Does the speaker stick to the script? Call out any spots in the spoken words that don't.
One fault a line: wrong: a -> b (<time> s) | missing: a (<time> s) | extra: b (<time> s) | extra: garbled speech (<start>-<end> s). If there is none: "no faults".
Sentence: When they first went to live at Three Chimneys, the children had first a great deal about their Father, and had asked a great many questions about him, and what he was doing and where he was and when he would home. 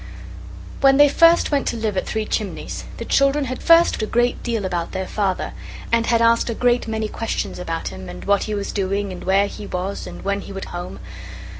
no faults